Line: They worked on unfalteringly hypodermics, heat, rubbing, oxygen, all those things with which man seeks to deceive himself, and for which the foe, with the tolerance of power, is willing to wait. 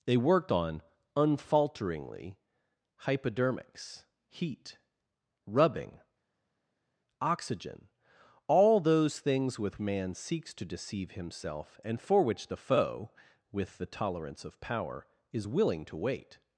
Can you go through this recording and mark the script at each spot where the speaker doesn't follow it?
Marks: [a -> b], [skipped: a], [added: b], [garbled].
They worked on unfalteringly hypodermics, heat, rubbing, oxygen, all those things with [skipped: which] man seeks to deceive himself, and for which the foe, with the tolerance of power, is willing to wait.